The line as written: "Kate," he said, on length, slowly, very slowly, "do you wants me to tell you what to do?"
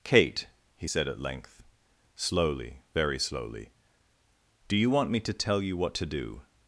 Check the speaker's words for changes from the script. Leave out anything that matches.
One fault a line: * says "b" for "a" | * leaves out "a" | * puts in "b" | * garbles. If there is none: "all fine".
* says "at" for "on"
* says "want" for "wants"